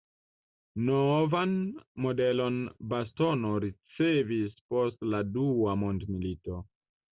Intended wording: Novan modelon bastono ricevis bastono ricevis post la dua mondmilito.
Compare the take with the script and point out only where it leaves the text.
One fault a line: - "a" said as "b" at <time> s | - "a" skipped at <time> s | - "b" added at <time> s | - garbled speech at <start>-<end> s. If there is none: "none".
- "bastono ricevis" skipped at 4.6 s